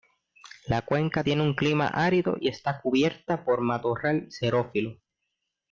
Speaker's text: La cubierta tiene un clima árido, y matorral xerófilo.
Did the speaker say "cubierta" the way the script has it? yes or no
no